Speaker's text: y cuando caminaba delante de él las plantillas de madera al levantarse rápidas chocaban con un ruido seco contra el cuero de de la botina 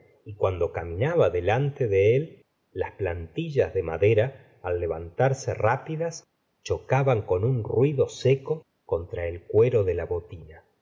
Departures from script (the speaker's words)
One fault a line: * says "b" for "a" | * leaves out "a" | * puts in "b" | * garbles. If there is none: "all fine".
* leaves out "de"